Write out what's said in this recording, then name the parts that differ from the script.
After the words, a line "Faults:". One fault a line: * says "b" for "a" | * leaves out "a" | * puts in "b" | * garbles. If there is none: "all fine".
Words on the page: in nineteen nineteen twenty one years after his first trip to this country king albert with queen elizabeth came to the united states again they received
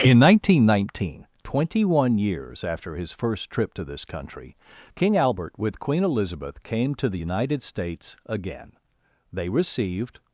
in nineteen nineteen twenty one years after his first trip to this country king albert with queen elizabeth came to the united states again they received
Faults:
all fine